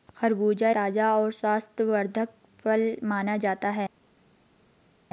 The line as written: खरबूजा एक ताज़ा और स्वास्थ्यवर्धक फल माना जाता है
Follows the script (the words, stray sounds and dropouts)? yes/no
no